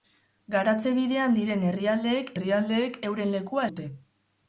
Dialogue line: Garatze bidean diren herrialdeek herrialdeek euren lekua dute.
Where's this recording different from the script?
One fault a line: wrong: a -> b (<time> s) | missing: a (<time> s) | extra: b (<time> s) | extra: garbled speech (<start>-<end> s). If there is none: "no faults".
no faults